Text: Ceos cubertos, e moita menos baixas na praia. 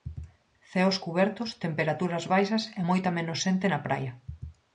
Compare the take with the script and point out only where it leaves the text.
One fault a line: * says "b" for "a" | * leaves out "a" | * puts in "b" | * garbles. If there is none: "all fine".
* puts in "temperaturas baixas"
* says "xente" for "baixas"